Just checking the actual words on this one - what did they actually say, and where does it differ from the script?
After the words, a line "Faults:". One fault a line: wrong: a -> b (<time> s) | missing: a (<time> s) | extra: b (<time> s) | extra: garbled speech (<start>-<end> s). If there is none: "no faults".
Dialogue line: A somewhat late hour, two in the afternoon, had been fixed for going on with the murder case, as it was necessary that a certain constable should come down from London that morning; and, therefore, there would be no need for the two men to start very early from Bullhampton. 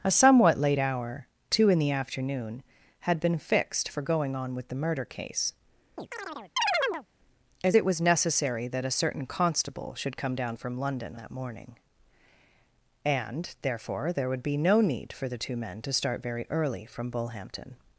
A somewhat late hour, two in the afternoon, had been fixed for going on with the murder case, as it was necessary that a certain constable should come down from London that morning; and, therefore, there would be no need for the two men to start very early from Bullhampton.
Faults:
no faults